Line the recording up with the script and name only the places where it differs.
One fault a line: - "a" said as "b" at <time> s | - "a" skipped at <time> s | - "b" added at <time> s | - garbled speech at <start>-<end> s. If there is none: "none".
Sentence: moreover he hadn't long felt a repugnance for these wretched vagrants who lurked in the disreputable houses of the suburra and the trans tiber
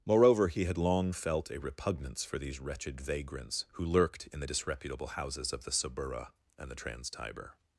- "hadn't" said as "had" at 0.7 s